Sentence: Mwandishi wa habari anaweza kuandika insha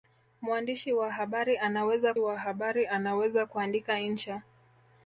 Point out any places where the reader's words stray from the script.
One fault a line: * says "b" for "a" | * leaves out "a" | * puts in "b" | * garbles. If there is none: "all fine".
* puts in "wa habari anaweza"